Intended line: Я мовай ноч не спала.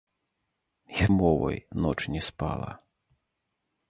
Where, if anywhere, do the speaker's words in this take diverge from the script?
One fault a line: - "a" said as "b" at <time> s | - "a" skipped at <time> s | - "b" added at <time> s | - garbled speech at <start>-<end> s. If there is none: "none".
none